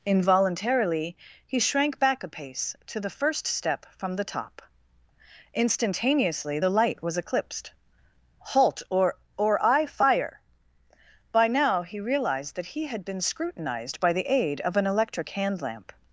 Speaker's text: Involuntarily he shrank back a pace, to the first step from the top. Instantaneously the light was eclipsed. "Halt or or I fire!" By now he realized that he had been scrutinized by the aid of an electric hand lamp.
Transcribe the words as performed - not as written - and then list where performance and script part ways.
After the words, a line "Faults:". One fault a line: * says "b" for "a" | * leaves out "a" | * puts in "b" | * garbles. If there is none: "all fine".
Involuntarily he shrank back a pace, to the first step from the top. Instantaneously the light was eclipsed. "Halt or or I fire!" By now he realized that he had been scrutinized by the aid of an electric hand lamp.
Faults:
all fine